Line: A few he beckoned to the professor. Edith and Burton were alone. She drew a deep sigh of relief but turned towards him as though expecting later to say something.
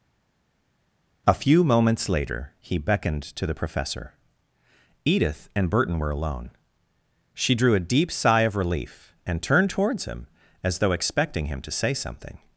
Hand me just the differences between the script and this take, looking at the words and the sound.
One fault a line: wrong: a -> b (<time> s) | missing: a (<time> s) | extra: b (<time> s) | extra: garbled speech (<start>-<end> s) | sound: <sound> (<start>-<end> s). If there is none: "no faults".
extra: moments later (1.6 s)
wrong: but -> and (9.2 s)
wrong: later -> him (11.5 s)